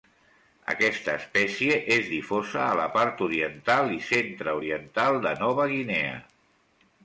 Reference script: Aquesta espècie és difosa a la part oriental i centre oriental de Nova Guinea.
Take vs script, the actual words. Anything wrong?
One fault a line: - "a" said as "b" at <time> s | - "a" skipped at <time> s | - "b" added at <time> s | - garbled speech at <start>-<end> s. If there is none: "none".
none